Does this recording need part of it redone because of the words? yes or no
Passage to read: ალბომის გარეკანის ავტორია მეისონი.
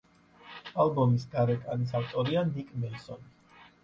yes